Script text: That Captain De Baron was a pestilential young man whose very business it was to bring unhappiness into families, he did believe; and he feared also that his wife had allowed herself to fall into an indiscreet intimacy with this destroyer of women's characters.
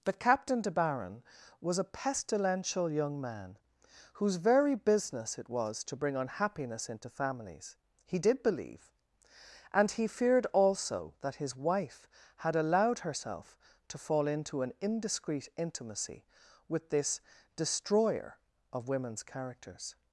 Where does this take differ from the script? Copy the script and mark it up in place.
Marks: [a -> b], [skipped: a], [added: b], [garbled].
[That -> But] Captain De Baron was a pestilential young man whose very business it was to bring unhappiness into families, he did believe; and he feared also that his wife had allowed herself to fall into an indiscreet intimacy with this destroyer of women's characters.